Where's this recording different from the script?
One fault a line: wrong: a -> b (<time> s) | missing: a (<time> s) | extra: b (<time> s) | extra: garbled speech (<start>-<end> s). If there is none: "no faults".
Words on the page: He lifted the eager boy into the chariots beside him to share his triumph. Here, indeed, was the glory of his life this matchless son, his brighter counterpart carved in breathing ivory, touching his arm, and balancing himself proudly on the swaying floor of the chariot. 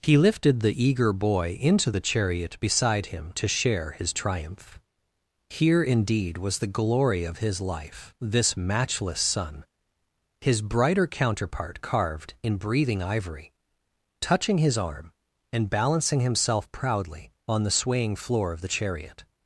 wrong: chariots -> chariot (2.0 s)